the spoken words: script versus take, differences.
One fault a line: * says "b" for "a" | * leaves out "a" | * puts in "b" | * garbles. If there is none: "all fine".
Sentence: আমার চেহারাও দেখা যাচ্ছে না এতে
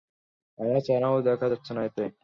all fine